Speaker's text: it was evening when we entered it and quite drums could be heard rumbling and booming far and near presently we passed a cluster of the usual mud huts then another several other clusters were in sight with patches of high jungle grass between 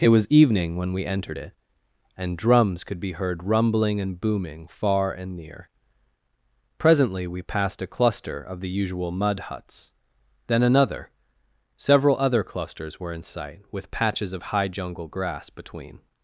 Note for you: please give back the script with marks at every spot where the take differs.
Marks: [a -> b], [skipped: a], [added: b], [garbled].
it was evening when we entered it and [skipped: quite] drums could be heard rumbling and booming far and near presently we passed a cluster of the usual mud huts then another several other clusters were in sight with patches of high jungle grass between